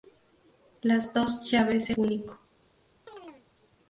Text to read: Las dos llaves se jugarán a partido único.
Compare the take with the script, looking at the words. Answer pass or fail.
fail